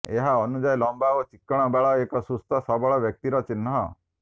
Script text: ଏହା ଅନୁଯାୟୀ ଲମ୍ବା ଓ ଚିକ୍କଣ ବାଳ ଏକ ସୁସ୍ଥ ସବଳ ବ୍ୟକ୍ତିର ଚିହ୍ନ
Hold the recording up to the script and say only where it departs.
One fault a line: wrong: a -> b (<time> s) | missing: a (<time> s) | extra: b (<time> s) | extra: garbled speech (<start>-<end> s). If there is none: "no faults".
no faults